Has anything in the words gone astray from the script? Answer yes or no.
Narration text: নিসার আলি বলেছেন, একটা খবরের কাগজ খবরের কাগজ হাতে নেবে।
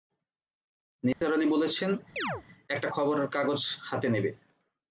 yes